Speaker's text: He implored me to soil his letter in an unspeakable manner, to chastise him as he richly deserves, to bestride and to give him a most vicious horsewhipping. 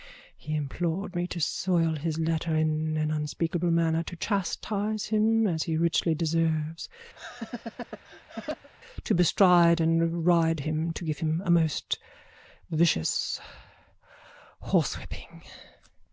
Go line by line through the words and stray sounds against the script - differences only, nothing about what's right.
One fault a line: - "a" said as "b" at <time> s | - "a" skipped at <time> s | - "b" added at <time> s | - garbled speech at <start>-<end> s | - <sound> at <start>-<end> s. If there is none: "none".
- laugh at 7.1-8.7 s
- "ride him" added at 10.3 s